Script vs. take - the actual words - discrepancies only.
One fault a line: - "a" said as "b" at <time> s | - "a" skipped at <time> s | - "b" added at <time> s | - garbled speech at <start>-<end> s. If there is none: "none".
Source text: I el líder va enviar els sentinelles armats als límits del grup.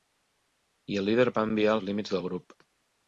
- "els sentinelles armats" skipped at 1.8 s